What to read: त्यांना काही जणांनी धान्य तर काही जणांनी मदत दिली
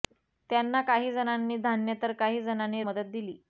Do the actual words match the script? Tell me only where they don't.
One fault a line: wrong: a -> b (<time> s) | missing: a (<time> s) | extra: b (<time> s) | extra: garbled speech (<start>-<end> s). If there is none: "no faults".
no faults